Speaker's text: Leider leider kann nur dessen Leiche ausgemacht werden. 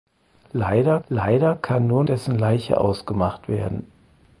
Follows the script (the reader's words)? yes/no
yes